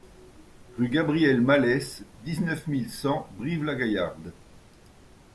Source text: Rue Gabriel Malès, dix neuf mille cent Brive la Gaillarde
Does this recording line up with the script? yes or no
yes